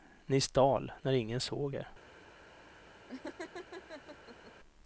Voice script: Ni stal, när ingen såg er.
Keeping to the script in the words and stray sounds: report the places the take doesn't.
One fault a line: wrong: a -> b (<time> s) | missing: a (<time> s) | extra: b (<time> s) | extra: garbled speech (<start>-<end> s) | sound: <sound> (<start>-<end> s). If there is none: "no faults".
sound: laugh (3.1-4.5 s)